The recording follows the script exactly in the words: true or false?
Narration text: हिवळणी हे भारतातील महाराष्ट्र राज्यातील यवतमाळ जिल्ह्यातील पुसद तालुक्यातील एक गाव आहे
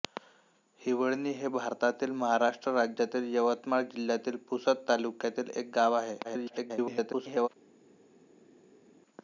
false